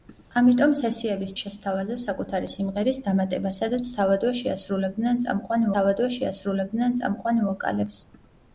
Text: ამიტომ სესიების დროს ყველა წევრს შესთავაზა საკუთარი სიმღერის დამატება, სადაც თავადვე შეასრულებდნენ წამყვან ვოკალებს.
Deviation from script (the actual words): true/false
true